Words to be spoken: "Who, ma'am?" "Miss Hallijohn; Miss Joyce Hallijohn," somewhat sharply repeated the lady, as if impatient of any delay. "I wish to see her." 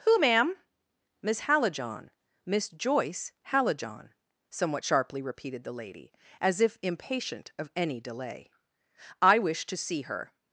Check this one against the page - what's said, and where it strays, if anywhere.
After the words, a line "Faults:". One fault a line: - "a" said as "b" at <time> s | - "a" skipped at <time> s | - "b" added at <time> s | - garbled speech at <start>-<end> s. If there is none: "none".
"Who, ma'am?" "Miss Hallijohn; Miss Joyce Hallijohn," somewhat sharply repeated the lady, as if impatient of any delay. "I wish to see her."
Faults:
none